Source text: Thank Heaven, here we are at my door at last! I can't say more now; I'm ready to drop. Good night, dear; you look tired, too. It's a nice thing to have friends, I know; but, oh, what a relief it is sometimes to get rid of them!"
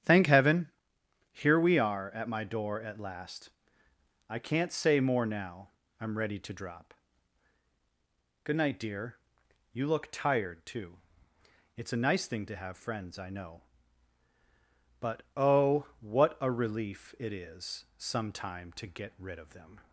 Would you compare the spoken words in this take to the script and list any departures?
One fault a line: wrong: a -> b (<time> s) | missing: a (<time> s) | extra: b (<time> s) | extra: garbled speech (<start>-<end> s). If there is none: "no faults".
wrong: sometimes -> sometime (18.0 s)